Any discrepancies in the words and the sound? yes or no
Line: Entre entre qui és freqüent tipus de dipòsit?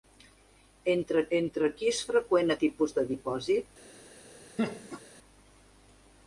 yes